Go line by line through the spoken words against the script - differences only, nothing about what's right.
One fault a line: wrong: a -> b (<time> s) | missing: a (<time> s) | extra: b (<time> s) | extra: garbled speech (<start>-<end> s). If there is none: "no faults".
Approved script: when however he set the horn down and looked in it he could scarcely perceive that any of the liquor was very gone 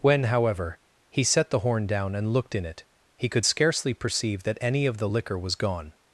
missing: very (5.5 s)